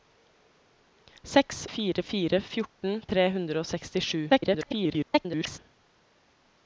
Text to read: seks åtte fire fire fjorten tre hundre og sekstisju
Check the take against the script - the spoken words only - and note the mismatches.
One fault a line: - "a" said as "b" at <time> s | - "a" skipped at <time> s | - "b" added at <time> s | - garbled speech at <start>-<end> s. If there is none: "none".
- "åtte" skipped at 1.7 s
- garbled speech at 4.3-5.6 s